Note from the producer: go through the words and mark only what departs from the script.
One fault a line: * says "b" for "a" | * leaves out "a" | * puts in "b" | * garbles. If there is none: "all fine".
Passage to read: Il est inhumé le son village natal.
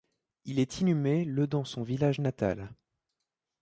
* puts in "dans"